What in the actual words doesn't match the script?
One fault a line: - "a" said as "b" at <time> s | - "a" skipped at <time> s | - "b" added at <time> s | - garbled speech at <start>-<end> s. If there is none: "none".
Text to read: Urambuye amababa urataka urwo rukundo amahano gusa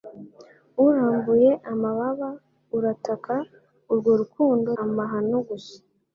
none